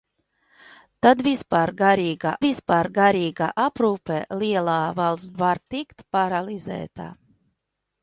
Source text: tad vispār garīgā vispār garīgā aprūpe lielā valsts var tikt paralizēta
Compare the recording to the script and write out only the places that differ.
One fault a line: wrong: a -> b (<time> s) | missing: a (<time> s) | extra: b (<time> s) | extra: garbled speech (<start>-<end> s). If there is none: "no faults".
no faults